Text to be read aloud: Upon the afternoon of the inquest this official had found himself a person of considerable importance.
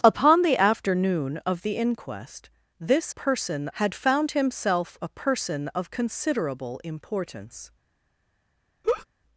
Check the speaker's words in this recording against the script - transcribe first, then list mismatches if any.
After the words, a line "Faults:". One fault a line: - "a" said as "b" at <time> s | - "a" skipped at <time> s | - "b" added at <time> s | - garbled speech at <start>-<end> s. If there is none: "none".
Upon the afternoon of the inquest this person had found himself a person of considerable importance.
Faults:
- "official" said as "person" at 3.1 s